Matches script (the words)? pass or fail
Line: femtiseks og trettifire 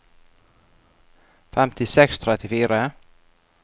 pass